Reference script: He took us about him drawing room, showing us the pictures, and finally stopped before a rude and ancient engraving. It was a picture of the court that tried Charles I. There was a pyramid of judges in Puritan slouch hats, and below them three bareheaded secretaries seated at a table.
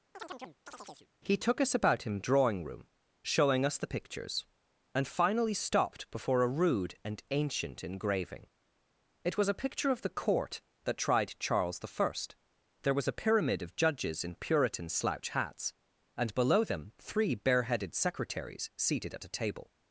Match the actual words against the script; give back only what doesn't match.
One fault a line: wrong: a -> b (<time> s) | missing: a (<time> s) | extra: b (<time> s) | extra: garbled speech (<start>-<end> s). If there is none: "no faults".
no faults